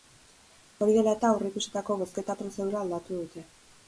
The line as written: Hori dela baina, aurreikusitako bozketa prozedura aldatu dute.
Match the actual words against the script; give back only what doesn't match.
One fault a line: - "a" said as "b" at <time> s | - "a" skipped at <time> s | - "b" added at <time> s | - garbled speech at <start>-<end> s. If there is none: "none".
- "baina" said as "eta" at 1.2 s